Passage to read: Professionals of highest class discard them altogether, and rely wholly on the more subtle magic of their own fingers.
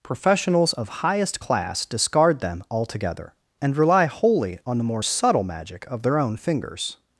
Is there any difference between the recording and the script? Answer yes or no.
no